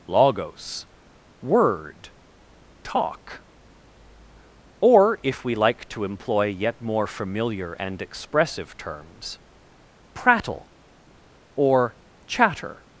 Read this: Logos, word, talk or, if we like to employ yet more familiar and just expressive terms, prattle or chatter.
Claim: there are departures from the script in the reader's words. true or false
true